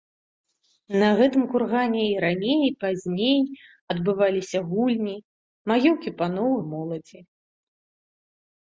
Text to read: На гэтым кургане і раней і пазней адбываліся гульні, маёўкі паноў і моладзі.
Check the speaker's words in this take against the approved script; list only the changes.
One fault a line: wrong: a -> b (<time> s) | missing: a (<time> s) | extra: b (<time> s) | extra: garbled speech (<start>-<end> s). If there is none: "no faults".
no faults